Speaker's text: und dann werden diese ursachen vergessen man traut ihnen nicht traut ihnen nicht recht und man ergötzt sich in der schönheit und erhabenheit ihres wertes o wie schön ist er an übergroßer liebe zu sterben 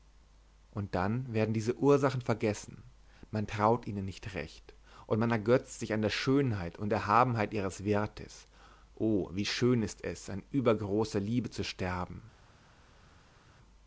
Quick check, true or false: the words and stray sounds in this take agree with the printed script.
false